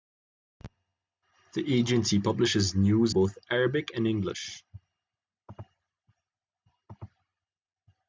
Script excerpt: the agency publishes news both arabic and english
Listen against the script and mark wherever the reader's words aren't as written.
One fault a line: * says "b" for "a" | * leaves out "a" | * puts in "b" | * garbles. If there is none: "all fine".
all fine